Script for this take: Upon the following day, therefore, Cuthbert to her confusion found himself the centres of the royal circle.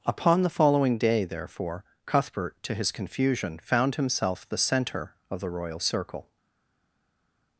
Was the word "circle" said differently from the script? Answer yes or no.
no